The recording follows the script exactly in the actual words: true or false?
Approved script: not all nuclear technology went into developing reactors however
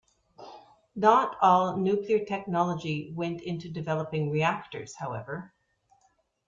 true